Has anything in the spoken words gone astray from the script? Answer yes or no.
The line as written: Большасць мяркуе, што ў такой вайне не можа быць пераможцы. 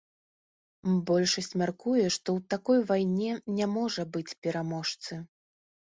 no